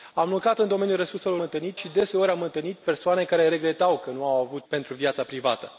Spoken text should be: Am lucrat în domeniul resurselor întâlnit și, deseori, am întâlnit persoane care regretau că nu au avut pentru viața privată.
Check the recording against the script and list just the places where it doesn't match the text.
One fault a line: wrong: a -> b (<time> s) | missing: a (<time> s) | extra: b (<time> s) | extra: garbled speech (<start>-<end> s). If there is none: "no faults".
no faults